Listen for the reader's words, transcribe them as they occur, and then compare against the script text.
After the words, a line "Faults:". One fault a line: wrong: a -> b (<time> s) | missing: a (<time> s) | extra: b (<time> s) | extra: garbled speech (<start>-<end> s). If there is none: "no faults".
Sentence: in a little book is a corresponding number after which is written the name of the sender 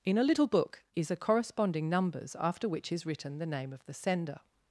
in a little book is a corresponding numbers after which is written the name of the sender
Faults:
wrong: number -> numbers (1.9 s)